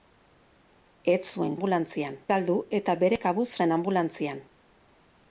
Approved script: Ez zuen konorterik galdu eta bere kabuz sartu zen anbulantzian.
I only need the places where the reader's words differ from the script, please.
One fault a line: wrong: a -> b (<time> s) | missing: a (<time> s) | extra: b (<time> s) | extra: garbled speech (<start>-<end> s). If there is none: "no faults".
wrong: konorterik -> anbulantzian (1.6 s)
missing: sartu (3.5 s)